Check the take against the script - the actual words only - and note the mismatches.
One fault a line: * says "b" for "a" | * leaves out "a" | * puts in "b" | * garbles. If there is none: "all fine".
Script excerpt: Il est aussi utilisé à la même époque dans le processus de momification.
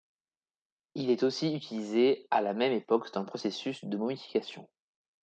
all fine